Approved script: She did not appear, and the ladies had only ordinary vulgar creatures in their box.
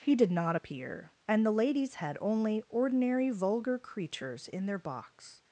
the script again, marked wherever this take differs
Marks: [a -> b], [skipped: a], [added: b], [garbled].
[She -> He] did not appear, and the ladies had only ordinary vulgar creatures in their box.